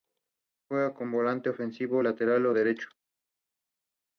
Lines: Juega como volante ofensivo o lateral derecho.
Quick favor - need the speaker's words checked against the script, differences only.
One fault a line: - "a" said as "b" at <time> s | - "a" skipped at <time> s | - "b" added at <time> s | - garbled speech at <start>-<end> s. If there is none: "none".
none